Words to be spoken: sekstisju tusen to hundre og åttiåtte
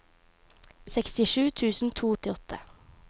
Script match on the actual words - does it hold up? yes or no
no